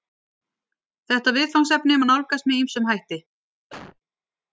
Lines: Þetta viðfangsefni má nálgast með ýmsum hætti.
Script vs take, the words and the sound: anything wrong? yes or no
yes